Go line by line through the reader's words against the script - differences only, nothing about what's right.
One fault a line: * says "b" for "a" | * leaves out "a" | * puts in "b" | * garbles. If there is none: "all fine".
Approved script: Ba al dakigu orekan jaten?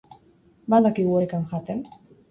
all fine